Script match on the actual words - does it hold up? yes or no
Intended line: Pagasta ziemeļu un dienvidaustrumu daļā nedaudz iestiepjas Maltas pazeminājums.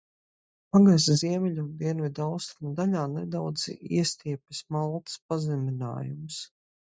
yes